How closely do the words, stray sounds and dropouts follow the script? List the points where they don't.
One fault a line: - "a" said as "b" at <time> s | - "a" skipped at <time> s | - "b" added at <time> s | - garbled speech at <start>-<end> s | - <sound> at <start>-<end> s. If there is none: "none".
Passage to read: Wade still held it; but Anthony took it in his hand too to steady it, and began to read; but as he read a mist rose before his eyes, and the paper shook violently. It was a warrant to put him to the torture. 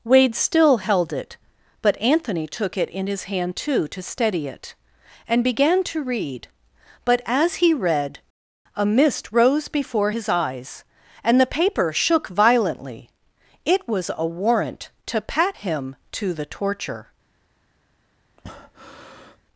- "put" said as "pat" at 15.2 s
- breath at 18.4-19.4 s